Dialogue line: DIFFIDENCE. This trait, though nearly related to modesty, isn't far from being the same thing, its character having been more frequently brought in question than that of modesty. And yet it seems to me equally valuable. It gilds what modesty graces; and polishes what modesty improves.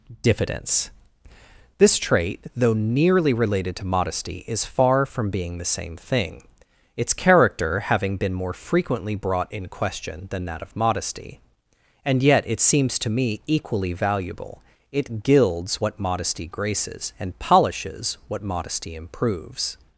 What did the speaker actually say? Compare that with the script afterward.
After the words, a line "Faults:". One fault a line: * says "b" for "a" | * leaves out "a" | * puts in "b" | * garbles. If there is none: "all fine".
DIFFIDENCE. This trait, though nearly related to modesty, is far from being the same thing, its character having been more frequently brought in question than that of modesty. And yet it seems to me equally valuable. It gilds what modesty graces; and polishes what modesty improves.
Faults:
* says "is" for "isn't"